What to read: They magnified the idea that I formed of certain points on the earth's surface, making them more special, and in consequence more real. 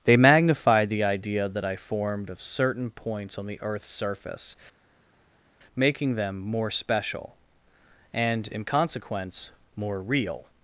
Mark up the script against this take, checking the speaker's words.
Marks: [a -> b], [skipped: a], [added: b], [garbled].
They magnified the idea that I formed of certain points on the earth's surface, making them more special, and in consequence more real.